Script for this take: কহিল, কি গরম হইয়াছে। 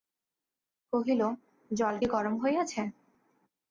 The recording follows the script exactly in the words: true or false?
false